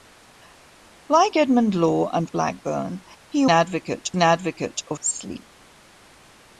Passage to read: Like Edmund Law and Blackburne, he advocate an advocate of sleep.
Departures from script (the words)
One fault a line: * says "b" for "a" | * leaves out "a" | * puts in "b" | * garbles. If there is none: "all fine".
all fine